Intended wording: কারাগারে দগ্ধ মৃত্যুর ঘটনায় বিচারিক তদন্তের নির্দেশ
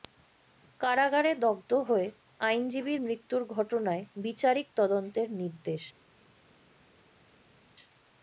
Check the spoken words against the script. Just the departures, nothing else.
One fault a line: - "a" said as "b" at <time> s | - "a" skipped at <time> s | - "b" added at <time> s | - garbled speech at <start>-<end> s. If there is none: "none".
- "হয়ে আইনজীবীর" added at 1.9 s